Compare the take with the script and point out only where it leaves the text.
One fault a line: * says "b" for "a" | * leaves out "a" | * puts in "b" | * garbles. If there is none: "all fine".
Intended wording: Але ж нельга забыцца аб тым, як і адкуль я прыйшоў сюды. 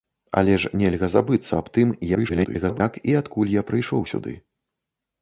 * garbles